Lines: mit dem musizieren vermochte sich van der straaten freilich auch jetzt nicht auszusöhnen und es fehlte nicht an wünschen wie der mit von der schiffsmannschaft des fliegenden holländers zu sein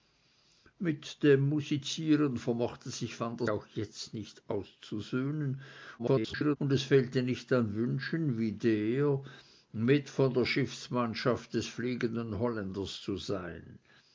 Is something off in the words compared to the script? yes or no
yes